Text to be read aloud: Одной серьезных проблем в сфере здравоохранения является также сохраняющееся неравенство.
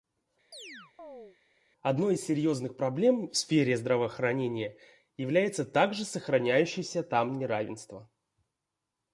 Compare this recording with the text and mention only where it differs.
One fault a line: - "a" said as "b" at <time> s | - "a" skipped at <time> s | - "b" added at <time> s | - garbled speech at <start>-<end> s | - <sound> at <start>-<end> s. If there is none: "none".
- chirp at 0.5-1.4 s
- "из" added at 2.1 s
- "там" added at 7.0 s